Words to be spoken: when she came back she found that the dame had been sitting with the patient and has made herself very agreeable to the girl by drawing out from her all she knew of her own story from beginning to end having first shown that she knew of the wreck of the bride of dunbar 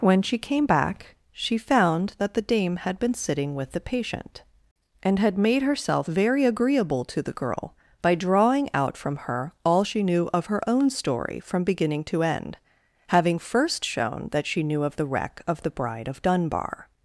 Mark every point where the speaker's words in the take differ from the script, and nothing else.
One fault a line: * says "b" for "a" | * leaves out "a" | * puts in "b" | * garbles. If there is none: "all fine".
* says "had" for "has"